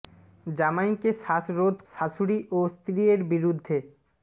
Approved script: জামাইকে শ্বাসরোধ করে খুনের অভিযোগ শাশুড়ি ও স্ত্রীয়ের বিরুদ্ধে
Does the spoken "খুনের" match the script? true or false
false